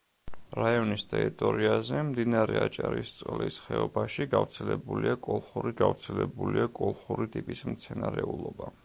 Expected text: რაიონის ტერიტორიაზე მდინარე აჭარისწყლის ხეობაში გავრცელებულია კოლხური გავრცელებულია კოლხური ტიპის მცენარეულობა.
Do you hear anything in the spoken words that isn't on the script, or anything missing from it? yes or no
no